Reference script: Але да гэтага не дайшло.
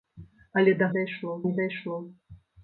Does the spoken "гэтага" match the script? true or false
false